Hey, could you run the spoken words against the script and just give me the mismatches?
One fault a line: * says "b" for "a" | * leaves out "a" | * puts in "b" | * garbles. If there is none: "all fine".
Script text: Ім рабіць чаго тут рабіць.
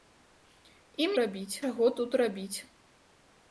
all fine